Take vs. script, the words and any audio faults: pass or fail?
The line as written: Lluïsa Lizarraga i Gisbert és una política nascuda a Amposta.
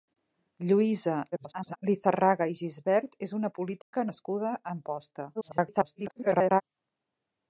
fail